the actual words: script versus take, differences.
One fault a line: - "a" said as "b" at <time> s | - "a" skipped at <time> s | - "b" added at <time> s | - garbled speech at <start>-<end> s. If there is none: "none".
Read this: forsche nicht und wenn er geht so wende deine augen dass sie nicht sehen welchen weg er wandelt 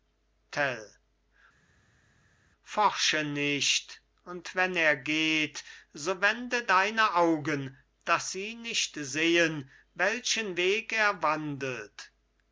none